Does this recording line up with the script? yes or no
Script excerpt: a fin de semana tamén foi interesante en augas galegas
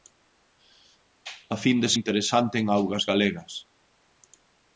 no